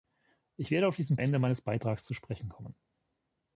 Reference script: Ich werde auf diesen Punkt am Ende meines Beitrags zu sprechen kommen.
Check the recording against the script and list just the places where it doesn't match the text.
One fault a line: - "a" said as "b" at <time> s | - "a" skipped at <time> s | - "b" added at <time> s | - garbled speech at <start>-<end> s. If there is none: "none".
- "Punkt am" skipped at 1.2 s